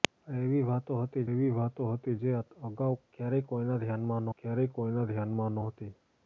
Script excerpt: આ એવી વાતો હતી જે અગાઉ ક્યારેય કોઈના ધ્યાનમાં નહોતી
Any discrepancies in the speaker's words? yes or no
yes